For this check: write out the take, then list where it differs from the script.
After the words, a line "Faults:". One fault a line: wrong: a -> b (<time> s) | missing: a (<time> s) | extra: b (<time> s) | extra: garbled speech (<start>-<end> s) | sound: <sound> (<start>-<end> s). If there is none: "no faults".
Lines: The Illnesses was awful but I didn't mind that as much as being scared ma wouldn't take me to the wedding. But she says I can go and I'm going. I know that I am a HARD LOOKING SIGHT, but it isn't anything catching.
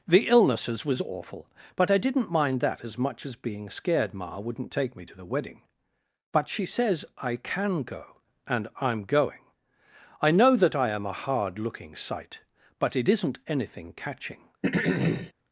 The Illnesses was awful but I didn't mind that as much as being scared ma wouldn't take me to the wedding. But she says I can go and I'm going. I know that I am a HARD LOOKING SIGHT, but it isn't anything catching.
Faults:
sound: throat clearing (14.6-15.3 s)